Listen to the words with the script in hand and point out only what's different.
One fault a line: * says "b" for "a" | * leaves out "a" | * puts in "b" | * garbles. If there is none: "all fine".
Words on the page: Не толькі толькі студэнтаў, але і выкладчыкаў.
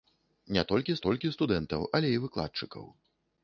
all fine